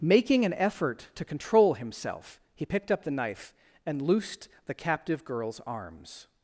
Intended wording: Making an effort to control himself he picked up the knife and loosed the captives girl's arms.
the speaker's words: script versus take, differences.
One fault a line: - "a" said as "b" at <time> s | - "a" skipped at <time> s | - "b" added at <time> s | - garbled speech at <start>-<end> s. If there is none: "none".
- "captives" said as "captive" at 4.7 s